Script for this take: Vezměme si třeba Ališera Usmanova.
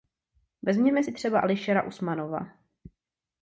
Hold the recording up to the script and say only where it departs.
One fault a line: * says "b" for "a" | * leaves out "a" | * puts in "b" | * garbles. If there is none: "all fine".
all fine